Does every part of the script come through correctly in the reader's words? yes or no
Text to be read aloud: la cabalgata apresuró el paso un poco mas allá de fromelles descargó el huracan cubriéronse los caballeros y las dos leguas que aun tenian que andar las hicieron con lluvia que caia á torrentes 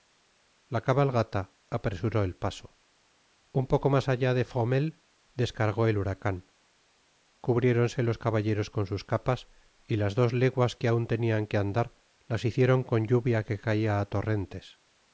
no